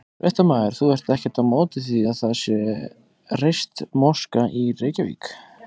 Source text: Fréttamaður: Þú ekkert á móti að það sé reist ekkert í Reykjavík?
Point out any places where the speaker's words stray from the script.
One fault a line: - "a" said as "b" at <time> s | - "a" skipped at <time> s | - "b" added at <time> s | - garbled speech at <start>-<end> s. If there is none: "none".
- "ert" added at 0.9 s
- "því" added at 1.9 s
- "ekkert" said as "moska" at 4.0 s